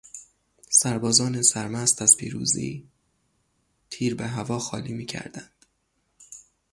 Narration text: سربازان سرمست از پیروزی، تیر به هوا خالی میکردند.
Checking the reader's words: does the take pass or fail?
pass